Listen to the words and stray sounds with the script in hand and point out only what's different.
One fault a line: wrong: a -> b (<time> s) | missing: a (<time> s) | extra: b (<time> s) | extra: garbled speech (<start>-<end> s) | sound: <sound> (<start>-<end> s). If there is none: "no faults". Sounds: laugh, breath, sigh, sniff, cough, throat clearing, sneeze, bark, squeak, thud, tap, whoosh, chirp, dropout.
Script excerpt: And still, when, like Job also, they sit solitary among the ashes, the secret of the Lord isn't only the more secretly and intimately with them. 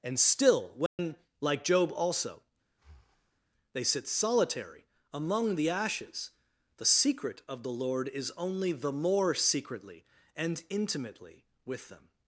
sound: dropout (0.9-1.0 s)
sound: breath (2.7-3.4 s)
wrong: isn't -> is (8.1 s)